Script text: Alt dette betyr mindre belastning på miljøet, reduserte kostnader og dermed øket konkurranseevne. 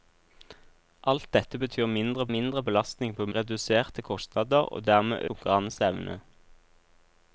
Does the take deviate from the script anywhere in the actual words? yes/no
yes